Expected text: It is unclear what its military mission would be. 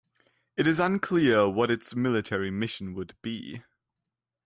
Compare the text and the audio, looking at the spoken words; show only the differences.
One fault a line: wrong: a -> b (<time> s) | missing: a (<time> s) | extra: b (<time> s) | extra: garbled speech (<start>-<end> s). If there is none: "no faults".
no faults